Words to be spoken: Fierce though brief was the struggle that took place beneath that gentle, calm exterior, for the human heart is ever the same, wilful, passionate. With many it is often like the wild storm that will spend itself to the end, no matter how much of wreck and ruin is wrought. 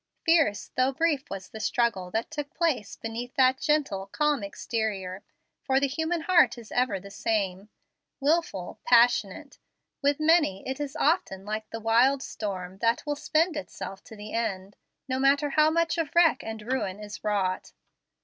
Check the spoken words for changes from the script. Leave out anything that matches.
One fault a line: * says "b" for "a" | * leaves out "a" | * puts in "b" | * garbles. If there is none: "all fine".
all fine